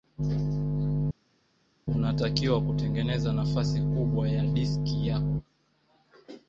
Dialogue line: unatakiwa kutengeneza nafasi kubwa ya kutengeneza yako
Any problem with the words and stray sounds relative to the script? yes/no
yes